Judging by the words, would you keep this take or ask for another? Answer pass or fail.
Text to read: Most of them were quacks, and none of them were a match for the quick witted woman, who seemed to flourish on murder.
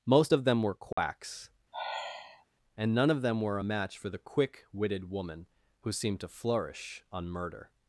pass